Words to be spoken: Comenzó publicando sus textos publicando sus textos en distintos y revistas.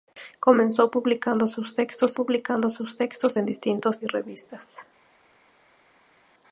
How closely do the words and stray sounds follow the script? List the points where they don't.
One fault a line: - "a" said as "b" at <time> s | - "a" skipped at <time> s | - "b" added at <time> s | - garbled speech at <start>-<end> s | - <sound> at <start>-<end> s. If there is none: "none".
none